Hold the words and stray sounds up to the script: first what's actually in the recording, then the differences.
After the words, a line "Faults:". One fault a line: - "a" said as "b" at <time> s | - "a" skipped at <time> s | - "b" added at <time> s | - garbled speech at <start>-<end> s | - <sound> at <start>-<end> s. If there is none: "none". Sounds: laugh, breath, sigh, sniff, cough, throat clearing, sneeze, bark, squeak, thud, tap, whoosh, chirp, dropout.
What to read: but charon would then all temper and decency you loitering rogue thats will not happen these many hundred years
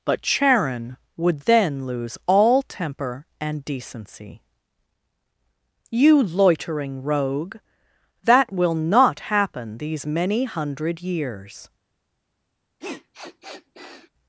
but charon would then lose all temper and decency you loitering rogue that will not happen these many hundred years
Faults:
- "lose" added at 1.9 s
- "thats" said as "that" at 8.2 s
- sniff at 12.8-14.1 s